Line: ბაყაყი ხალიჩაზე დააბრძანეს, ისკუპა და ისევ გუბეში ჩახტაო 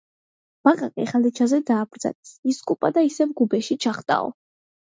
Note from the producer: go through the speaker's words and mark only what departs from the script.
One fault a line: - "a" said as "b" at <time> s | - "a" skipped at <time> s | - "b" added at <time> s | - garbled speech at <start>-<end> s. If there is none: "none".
none